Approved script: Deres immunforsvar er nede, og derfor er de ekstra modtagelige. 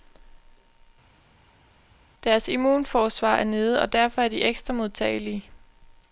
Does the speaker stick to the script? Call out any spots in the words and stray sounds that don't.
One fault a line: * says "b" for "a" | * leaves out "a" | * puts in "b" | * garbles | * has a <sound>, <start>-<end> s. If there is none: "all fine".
all fine